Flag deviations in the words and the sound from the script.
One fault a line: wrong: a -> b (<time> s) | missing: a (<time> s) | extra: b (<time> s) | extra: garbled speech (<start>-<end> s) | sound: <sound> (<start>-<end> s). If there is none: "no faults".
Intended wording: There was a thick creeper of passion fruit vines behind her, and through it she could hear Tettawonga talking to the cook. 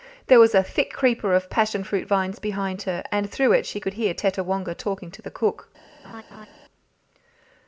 sound: laugh (6.0-6.5 s)